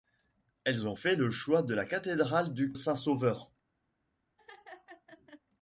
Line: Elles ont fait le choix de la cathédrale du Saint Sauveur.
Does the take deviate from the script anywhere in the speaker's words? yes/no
no